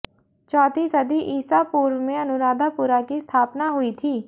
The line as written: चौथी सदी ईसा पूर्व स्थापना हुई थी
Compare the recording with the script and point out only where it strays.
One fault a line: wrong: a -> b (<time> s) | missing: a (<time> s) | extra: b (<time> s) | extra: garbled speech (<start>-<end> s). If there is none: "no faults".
extra: में अनुराधापुरा की (2.0 s)